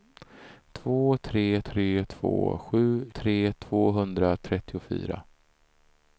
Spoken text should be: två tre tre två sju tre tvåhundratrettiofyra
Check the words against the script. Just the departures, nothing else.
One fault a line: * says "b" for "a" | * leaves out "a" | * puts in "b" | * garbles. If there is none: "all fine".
all fine